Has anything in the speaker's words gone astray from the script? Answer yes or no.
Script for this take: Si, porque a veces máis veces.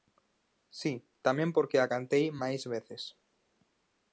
yes